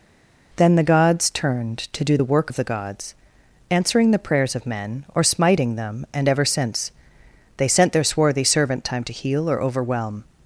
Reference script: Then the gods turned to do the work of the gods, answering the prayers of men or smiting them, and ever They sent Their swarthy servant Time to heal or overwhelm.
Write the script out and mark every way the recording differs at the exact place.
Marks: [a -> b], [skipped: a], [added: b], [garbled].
Then the gods turned to do the work of the gods, answering the prayers of men or smiting them, and ever [added: since] They sent Their swarthy servant Time to heal or overwhelm.